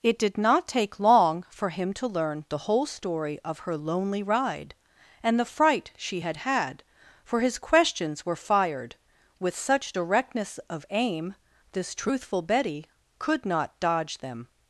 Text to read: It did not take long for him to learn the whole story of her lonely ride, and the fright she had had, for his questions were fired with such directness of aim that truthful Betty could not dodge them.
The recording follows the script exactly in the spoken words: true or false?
false